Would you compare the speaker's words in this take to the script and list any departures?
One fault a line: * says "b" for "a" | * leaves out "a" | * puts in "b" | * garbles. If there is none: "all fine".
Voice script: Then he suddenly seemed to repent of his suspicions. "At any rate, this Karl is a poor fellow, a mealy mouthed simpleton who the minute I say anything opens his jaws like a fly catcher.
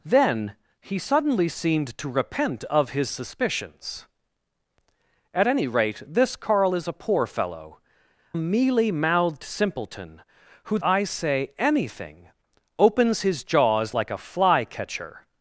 * leaves out "a"
* leaves out "the minute"